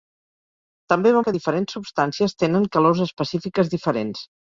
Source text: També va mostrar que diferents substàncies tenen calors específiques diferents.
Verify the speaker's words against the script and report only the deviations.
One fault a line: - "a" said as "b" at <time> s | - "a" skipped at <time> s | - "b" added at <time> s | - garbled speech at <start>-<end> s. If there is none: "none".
- "mostrar" skipped at 1.2 s